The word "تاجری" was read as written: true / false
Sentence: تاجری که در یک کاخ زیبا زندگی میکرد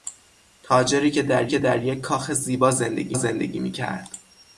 true